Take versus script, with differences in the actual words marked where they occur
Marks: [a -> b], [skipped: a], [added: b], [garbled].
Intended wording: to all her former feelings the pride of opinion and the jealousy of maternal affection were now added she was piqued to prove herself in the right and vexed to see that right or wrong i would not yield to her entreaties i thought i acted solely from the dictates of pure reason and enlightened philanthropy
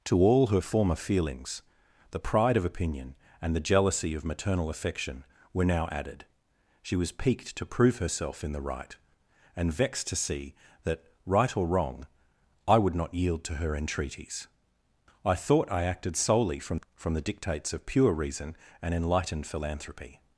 to all her former feelings the pride of opinion and the jealousy of maternal affection were now added she was piqued to prove herself in the right and vexed to see that right or wrong i would not yield to her entreaties i thought i acted solely from [added: from] the dictates of pure reason and enlightened philanthropy